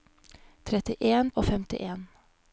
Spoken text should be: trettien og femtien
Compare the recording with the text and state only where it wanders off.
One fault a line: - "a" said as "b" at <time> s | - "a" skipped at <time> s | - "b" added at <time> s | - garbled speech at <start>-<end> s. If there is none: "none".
none